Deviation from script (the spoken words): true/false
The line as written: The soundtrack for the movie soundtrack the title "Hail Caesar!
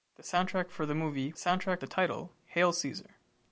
false